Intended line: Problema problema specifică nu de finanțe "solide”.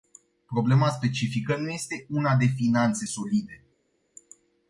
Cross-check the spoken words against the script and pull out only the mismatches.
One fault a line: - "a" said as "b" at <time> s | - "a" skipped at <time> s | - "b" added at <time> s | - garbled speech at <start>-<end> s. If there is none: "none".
- "problema" skipped at 0.9 s
- "este una" added at 1.7 s